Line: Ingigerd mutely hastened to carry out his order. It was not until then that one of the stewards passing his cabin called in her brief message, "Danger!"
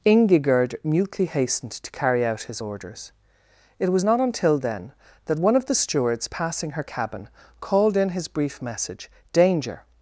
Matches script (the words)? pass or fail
fail